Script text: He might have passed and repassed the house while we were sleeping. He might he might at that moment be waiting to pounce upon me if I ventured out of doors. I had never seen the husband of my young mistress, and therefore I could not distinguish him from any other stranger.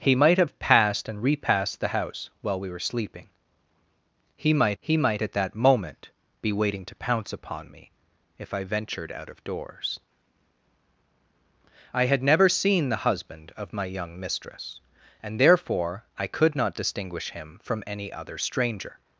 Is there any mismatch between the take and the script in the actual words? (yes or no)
no